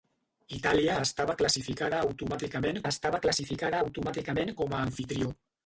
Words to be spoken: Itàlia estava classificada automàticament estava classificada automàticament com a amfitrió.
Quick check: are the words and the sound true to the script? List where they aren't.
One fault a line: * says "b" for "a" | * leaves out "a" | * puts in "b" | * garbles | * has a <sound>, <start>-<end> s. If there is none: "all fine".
all fine